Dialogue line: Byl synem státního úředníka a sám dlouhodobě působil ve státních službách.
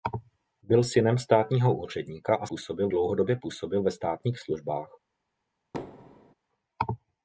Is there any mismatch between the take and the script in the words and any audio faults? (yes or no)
yes